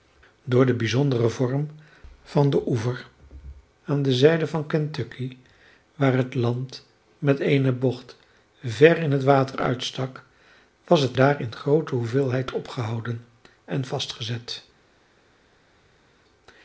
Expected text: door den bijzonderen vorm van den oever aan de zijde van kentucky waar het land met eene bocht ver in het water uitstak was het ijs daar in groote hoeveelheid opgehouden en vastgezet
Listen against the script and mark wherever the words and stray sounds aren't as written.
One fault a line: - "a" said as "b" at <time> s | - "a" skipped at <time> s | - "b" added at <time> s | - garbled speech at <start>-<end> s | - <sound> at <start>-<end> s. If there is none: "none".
- "ijs" skipped at 11.2 s